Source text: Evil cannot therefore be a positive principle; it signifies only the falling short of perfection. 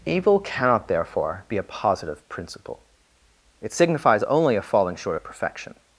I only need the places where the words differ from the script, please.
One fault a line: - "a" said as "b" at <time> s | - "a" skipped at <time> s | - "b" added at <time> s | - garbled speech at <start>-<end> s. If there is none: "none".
- "the" said as "a" at 4.6 s